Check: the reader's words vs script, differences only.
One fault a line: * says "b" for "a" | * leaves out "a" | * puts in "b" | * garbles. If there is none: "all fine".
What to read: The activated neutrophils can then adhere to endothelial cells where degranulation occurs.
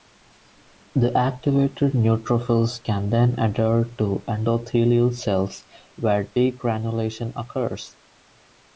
all fine